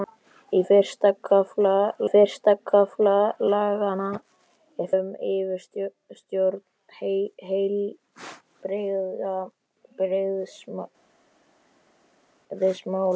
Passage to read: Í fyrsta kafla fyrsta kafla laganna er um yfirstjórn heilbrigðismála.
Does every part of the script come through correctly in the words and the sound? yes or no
yes